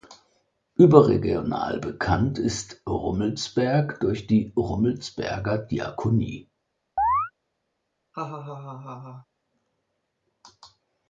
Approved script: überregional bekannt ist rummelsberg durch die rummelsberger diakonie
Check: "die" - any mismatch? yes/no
no